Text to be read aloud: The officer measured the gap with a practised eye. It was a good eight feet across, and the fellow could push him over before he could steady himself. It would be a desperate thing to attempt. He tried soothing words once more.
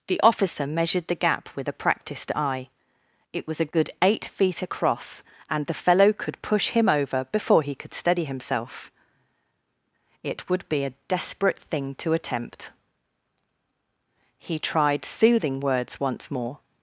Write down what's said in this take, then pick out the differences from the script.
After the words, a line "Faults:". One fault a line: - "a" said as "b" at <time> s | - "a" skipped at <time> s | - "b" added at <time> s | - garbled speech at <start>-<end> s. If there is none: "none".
The officer measured the gap with a practised eye. It was a good eight feet across, and the fellow could push him over before he could steady himself. It would be a desperate thing to attempt. He tried soothing words once more.
Faults:
none